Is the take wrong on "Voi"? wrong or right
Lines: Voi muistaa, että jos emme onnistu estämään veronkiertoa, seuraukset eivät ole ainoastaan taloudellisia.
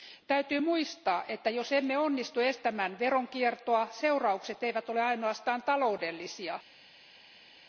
wrong